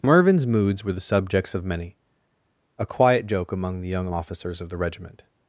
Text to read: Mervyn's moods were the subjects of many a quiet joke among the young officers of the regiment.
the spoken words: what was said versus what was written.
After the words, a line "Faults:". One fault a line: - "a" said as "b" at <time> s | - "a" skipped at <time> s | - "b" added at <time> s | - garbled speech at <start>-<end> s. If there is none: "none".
Mervyn's moods were the subjects of many a quiet joke among the young officers of the regiment.
Faults:
none